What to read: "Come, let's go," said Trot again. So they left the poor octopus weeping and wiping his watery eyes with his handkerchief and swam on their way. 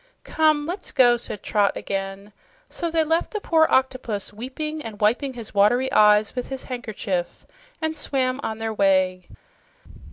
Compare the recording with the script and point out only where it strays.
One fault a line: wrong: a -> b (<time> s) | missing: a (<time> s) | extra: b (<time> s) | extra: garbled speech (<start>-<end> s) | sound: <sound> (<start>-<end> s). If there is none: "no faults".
no faults